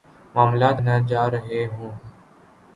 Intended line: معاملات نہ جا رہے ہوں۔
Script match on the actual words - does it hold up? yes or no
yes